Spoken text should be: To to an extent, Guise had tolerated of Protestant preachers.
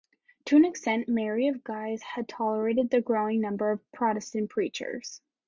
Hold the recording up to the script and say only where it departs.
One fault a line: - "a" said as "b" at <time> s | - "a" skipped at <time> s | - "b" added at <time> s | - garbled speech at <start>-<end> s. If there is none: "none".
- "to" skipped at 0.6 s
- "Mary of" added at 1.1 s
- "the growing number" added at 2.9 s